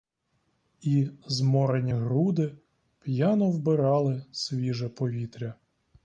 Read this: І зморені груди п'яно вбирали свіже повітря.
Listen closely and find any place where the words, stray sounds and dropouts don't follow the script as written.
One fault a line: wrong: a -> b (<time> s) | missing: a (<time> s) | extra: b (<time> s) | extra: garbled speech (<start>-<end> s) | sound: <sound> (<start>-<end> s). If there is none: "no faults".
no faults